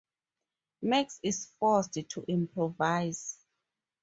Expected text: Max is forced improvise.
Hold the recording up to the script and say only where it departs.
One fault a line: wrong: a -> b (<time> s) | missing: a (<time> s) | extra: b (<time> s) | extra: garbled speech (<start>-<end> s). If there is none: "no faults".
extra: to (1.9 s)